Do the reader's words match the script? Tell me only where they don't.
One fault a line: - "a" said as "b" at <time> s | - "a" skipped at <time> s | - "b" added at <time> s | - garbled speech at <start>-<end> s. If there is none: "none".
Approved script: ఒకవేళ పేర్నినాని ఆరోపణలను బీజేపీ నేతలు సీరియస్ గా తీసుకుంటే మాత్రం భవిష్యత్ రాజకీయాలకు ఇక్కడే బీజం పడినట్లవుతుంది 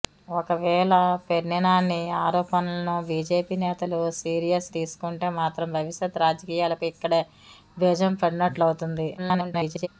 - "గా" skipped at 4.7 s
- garbled speech at 9.2-9.9 s